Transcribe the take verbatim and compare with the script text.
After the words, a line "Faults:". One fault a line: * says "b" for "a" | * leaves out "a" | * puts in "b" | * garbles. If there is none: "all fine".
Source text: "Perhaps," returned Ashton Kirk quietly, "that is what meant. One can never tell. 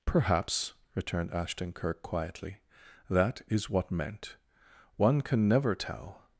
"Perhaps," returned Ashton Kirk quietly, "that is what meant. One can never tell.
Faults:
all fine